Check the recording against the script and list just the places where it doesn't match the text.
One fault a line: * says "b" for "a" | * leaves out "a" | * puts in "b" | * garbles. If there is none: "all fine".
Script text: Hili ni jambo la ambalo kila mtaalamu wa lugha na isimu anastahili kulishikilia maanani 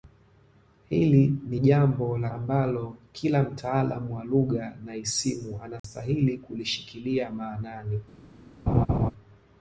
all fine